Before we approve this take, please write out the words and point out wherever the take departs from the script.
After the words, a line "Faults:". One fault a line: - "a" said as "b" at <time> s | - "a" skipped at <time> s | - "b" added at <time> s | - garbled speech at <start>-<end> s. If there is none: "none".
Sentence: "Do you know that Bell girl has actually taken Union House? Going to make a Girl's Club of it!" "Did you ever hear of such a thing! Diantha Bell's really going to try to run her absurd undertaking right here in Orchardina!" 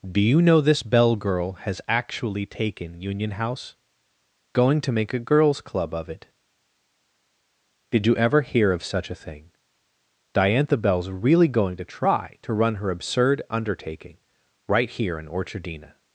"Do you know this Bell girl has actually taken Union House? Going to make a Girl's Club of it!" "Did you ever hear of such a thing! Diantha Bell's really going to try to run her absurd undertaking right here in Orchardina!"
Faults:
- "that" said as "this" at 0.6 s